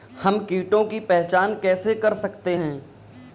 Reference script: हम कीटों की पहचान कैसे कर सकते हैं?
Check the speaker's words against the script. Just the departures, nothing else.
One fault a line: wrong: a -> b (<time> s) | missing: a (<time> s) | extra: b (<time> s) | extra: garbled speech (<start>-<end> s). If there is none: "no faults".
no faults